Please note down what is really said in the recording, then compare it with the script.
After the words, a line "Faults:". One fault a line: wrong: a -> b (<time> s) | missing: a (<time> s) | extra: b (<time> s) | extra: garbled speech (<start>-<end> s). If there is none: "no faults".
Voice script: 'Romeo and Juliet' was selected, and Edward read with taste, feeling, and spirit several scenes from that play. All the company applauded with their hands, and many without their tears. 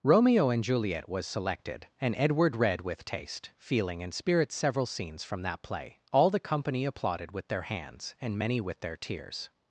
'Romeo and Juliet' was selected, and Edward read with taste, feeling, and spirit several scenes from that play. All the company applauded with their hands, and many with their tears.
Faults:
wrong: without -> with (8.6 s)